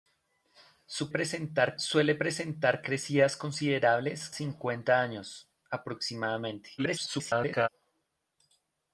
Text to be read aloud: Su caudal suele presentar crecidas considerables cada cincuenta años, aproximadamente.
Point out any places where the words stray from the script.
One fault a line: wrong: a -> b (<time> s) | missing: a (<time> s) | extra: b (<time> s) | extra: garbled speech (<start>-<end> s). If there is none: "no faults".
wrong: caudal -> presentar (1.1 s)
missing: cada (4.3 s)
extra: garbled speech (6.8-7.7 s)